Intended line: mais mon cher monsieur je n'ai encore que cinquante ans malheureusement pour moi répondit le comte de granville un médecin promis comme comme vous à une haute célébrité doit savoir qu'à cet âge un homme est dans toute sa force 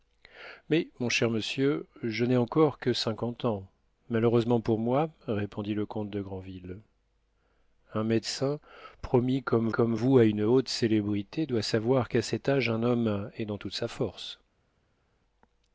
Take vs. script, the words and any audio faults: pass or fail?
pass